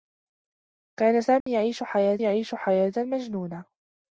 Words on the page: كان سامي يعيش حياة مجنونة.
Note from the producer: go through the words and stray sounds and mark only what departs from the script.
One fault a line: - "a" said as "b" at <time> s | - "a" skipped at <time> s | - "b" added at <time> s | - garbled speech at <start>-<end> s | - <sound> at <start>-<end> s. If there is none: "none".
- dropout at 1.4-1.5 s
- "يعيش حياة" added at 2.2 s